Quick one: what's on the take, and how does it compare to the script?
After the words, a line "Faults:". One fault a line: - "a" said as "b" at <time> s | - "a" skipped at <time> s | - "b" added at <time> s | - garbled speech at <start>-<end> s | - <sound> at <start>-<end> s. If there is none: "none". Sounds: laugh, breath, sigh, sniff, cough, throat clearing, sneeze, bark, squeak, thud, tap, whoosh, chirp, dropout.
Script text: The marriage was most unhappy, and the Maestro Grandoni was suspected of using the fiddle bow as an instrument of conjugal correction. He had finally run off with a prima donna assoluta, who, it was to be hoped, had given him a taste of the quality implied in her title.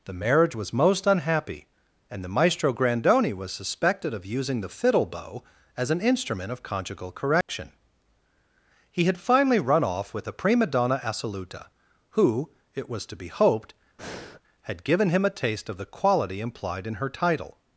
The marriage was most unhappy, and the Maestro Grandoni was suspected of using the fiddle bow as an instrument of conjugal correction. He had finally run off with a prima donna assoluta, who, it was to be hoped, had given him a taste of the quality implied in her title.
Faults:
- dropout at 7.4-7.5 s
- breath at 14.0-14.4 s